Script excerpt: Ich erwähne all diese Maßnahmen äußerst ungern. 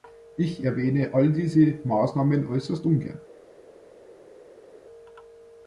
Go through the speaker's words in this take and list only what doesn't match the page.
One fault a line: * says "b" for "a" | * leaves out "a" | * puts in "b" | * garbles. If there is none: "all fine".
all fine